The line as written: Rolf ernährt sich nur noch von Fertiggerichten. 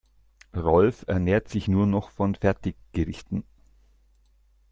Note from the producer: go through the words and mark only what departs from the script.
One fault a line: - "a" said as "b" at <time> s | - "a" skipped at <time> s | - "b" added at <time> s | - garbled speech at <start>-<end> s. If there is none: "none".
none